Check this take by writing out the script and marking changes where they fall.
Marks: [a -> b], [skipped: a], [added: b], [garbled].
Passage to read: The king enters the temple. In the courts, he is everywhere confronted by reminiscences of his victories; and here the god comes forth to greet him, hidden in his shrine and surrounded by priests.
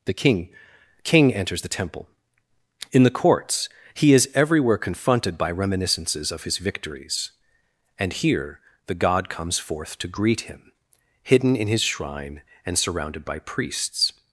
The king [added: king] enters the temple. In the courts, he is everywhere confronted by reminiscences of his victories; and here the god comes forth to greet him, hidden in his shrine and surrounded by priests.